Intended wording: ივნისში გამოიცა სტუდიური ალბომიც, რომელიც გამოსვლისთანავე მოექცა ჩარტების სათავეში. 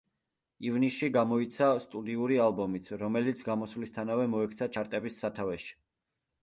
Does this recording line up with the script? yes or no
yes